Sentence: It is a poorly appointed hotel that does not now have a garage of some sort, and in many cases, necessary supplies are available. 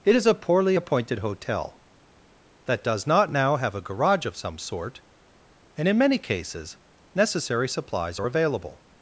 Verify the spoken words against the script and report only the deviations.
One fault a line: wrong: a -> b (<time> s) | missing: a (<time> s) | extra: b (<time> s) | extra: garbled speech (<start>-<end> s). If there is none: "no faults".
no faults